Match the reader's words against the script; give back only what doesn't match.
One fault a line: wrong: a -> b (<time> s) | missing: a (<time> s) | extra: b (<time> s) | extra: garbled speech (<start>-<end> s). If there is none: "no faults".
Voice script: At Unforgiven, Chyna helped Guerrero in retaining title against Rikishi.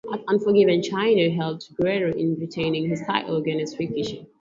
extra: his (2.9 s)